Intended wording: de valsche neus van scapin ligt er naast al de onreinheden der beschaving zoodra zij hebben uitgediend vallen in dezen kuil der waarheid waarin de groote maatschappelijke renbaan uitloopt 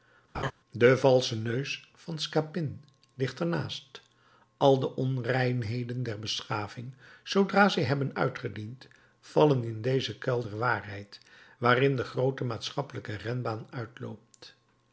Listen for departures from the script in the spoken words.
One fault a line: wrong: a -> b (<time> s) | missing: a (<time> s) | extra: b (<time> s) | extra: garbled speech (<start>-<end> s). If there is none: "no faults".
no faults